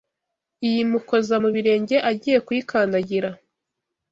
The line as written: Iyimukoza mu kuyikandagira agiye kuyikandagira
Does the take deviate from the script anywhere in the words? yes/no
yes